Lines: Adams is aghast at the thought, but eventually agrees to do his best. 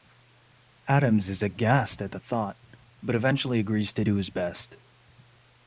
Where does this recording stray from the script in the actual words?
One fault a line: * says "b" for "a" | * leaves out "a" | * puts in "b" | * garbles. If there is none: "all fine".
all fine